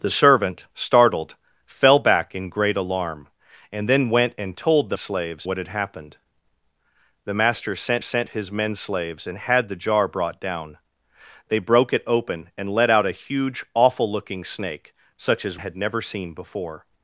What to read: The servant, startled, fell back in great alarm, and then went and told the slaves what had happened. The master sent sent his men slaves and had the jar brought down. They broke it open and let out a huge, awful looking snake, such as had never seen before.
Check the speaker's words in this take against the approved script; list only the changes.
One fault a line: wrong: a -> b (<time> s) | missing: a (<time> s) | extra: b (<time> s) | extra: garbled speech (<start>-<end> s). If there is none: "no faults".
no faults